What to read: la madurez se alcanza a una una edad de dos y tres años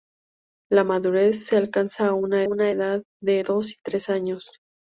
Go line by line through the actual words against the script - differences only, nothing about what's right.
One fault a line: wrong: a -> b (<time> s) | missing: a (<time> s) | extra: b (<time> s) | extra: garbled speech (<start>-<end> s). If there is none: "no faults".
no faults